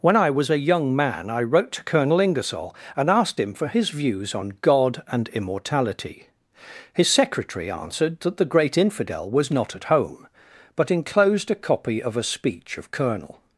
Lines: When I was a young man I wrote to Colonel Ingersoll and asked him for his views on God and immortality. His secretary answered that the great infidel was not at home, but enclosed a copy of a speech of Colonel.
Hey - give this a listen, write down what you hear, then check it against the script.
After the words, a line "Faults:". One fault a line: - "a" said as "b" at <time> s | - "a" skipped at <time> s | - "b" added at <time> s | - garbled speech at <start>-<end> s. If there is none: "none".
When I was a young man I wrote to Colonel Ingersoll and asked him for his views on God and immortality. His secretary answered that the great infidel was not at home, but enclosed a copy of a speech of Colonel.
Faults:
none